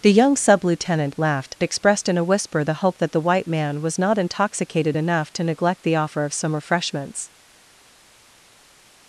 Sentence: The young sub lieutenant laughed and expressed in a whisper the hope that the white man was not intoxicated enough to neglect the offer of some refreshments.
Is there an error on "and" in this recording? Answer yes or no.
yes